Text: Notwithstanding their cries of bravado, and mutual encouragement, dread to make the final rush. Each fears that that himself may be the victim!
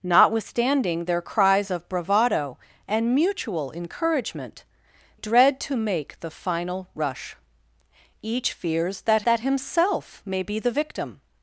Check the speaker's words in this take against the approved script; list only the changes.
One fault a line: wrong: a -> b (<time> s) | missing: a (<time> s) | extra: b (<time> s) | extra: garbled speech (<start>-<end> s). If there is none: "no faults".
no faults